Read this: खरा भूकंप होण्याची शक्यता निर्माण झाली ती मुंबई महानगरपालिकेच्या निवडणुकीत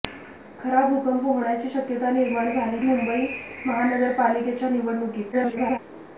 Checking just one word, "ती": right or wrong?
wrong